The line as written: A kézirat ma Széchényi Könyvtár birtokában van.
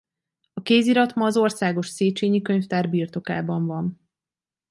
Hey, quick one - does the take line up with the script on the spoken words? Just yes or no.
no